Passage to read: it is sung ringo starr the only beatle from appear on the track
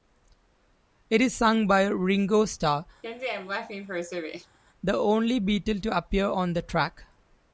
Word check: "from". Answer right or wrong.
wrong